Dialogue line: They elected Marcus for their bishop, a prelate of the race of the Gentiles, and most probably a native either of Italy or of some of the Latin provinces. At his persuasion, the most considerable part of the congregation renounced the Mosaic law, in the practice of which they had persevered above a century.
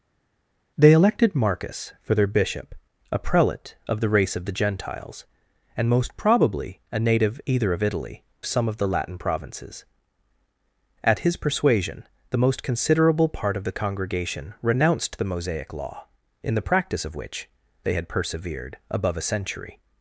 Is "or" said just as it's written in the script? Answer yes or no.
no